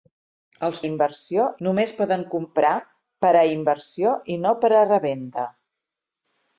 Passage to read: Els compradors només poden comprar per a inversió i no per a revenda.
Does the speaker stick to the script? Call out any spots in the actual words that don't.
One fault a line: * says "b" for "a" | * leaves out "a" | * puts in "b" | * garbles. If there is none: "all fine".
* says "inversió" for "compradors"